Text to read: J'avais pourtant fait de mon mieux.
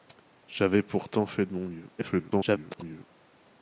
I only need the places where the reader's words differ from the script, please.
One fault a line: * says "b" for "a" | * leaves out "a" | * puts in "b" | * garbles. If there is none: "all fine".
* garbles